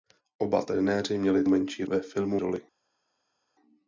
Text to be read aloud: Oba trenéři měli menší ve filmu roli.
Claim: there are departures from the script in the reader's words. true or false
false